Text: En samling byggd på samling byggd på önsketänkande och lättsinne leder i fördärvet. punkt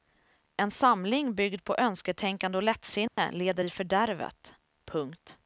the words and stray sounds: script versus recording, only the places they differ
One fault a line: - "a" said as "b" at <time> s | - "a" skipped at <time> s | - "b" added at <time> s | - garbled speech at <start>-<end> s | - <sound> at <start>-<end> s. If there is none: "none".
- "samling byggd på" skipped at 1.8 s
- dropout at 3.1-3.2 s